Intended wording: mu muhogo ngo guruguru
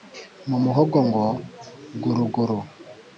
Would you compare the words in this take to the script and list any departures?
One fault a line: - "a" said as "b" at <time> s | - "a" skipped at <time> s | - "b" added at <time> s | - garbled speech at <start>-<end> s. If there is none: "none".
none